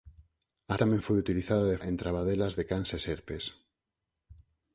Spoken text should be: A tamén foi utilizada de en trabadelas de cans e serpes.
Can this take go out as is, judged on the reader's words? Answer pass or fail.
pass